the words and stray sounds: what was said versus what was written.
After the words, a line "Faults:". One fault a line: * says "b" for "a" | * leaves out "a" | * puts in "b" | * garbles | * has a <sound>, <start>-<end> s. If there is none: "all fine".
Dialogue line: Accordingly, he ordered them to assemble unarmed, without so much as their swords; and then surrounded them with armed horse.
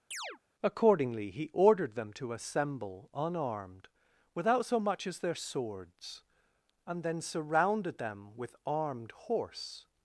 Accordingly, he ordered them to assemble unarmed, without so much as their swords; and then surrounded them with armed horse.
Faults:
* has a chirp, 0.1-0.4 s